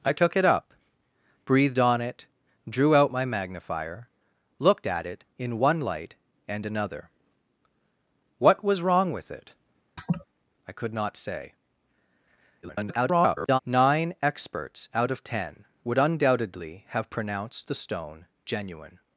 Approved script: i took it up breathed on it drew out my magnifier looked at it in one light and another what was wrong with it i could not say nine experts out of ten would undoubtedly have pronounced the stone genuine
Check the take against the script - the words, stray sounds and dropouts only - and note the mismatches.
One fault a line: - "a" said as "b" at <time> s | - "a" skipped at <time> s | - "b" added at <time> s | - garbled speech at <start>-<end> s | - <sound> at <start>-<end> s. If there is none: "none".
- laugh at 10.0-10.3 s
- garbled speech at 12.6-13.6 s